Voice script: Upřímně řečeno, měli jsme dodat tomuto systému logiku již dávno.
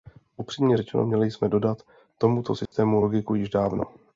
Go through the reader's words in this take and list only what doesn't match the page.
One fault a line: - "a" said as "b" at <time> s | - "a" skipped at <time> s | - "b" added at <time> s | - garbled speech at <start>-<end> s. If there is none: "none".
none